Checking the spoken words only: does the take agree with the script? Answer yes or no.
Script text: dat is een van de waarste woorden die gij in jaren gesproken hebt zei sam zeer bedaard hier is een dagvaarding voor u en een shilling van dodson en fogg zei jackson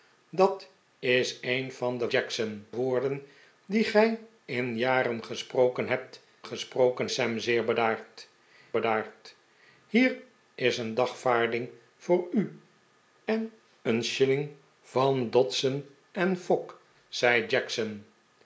no